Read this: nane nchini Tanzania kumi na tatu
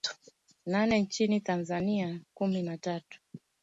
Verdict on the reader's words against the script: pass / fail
pass